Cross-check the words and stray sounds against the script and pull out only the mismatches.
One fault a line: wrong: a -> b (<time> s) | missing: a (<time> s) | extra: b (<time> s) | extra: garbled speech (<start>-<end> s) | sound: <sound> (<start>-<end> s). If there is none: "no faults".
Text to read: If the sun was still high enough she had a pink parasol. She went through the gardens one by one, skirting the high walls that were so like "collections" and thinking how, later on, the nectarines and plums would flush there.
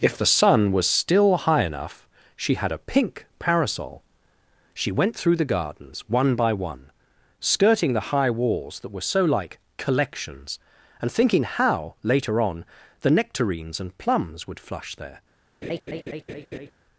sound: laugh (15.6-16.7 s)